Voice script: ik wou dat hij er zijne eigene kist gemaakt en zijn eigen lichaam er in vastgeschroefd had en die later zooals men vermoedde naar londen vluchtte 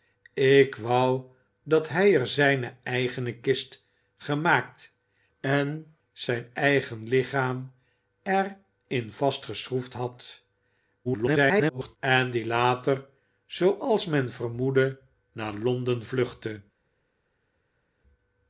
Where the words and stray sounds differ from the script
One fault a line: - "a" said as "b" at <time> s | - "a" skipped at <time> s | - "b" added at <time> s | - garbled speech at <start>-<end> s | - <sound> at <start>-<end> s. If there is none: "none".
- garbled speech at 11.0-12.0 s